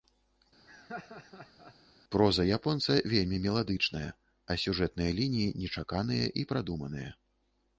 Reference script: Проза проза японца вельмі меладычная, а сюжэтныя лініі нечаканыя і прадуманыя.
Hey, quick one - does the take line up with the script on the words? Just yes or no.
no